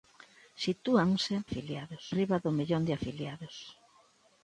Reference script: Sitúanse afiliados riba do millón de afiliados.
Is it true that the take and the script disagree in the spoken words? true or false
false